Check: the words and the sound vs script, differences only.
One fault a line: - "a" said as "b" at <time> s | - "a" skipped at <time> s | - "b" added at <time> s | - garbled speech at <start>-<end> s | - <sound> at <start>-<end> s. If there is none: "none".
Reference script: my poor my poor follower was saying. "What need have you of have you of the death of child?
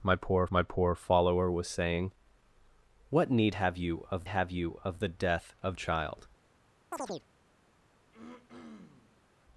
- chirp at 6.9-7.3 s
- throat clearing at 8.1-9.3 s